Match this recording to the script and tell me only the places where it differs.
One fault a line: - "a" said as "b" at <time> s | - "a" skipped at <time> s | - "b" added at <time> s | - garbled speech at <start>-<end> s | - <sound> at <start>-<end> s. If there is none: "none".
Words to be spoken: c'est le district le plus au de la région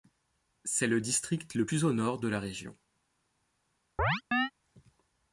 - "nord" added at 1.9 s
- chirp at 4.0-4.5 s